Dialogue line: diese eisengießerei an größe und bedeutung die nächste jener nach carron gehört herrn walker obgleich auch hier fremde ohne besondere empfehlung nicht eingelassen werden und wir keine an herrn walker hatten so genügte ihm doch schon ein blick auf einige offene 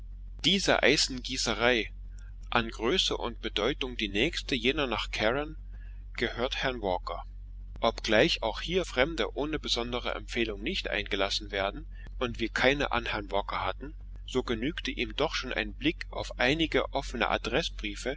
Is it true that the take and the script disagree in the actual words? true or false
false